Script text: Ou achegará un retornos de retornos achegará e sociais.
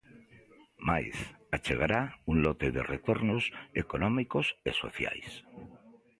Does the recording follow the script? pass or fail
fail